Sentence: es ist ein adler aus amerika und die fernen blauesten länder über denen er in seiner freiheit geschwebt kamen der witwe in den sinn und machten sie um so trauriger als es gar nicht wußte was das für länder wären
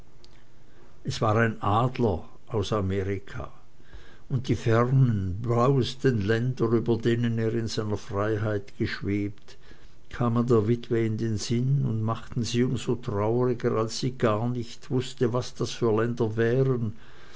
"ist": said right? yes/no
no